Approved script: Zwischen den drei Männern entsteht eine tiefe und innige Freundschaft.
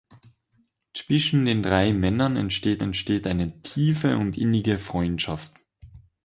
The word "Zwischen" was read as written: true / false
true